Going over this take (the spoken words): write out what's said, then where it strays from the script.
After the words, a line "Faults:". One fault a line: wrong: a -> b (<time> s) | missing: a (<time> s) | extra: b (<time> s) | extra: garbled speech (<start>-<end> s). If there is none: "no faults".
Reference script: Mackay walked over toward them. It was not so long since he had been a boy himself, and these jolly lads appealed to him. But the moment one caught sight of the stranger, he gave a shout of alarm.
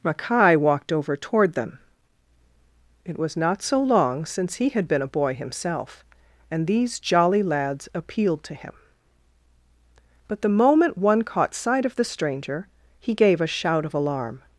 Mackay walked over toward them. It was not so long since he had been a boy himself, and these jolly lads appealed to him. But the moment one caught sight of the stranger, he gave a shout of alarm.
Faults:
no faults